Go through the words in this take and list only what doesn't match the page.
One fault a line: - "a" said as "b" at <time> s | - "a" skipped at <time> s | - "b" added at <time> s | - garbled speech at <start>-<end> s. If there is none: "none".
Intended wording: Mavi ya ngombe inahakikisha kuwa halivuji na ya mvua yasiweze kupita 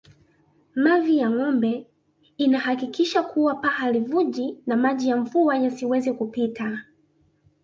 - "paa" added at 3.5 s
- "maji" added at 4.8 s